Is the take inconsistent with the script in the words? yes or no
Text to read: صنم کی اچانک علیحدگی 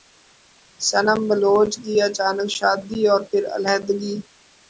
yes